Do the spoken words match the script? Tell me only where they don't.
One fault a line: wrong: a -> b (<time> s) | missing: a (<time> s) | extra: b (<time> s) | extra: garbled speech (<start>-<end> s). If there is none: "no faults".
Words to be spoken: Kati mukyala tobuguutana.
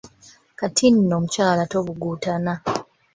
extra: nno (0.9 s)